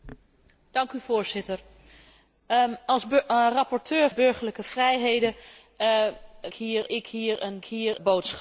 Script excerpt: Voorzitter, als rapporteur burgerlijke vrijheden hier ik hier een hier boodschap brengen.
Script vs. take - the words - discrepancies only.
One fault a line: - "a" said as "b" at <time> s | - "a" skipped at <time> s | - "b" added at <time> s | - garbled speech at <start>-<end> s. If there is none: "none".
none